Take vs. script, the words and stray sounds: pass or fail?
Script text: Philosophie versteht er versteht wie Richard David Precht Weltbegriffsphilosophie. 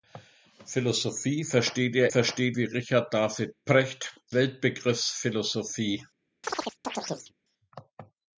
fail